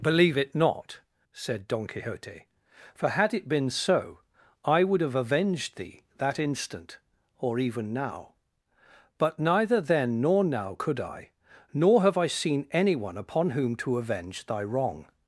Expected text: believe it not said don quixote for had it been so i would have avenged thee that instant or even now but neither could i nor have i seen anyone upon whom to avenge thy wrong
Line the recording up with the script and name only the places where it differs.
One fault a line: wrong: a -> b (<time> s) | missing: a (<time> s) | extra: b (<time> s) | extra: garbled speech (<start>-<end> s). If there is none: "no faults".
extra: then nor now (9.8 s)